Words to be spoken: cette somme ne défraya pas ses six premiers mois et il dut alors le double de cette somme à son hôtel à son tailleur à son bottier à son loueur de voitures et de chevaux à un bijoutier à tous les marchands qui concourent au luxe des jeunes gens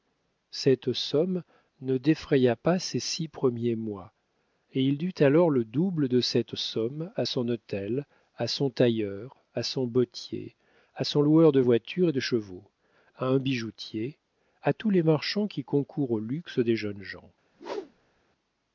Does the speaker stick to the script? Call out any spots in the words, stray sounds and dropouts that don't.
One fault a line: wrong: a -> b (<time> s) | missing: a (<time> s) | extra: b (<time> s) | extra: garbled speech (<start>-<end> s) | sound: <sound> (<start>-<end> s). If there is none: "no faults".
sound: whoosh (17.5-18.2 s)